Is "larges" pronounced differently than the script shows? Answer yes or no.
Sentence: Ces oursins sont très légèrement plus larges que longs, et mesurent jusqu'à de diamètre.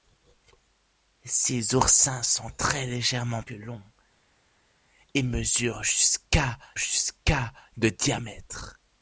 yes